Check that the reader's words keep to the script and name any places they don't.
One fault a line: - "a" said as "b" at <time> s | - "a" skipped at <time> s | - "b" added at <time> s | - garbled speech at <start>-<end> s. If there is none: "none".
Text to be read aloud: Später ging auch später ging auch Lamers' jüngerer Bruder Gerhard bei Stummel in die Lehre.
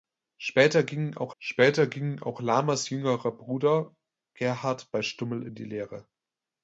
none